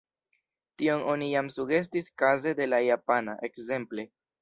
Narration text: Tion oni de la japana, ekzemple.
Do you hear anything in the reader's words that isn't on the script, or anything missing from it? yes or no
yes